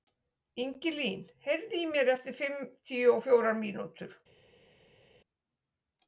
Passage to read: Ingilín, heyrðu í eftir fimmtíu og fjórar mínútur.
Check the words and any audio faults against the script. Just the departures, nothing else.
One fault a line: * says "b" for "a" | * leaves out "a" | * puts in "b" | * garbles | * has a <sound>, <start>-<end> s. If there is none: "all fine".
* puts in "mér"